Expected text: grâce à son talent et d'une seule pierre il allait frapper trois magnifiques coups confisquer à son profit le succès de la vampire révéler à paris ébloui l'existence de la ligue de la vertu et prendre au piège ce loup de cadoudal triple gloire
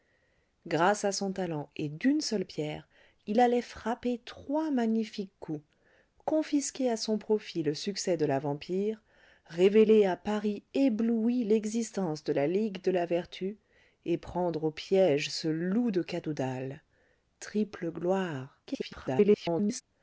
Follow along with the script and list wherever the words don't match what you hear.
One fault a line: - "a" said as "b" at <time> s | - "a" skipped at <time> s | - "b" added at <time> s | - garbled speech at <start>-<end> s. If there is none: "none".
- garbled speech at 18.7-19.8 s